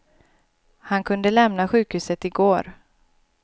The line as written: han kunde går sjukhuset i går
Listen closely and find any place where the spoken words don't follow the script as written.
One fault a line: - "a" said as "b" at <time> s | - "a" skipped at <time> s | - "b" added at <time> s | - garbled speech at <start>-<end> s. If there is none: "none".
- "går" said as "lämna" at 1.3 s